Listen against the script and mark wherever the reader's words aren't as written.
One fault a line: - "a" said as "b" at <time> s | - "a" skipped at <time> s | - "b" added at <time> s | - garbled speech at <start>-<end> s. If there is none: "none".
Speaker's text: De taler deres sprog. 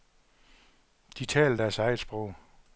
- "eget" added at 1.8 s